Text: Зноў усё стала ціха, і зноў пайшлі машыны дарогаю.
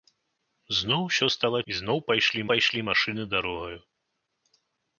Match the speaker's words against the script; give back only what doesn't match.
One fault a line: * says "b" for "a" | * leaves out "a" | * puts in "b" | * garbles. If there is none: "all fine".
* leaves out "ціха"
* puts in "пайшлі"